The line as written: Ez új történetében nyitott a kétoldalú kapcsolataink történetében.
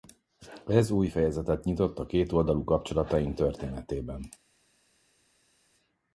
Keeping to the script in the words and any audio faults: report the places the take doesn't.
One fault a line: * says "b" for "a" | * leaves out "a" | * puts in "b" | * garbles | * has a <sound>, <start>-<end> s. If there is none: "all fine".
* says "fejezetet" for "történetében"